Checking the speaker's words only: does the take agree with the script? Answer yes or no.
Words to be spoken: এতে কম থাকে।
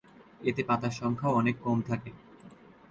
no